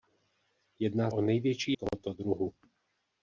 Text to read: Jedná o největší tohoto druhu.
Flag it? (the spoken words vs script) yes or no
no